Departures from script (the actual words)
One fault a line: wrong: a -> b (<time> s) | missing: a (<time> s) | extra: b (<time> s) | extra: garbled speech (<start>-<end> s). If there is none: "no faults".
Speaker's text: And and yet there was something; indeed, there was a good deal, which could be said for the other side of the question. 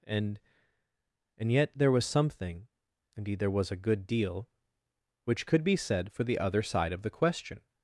no faults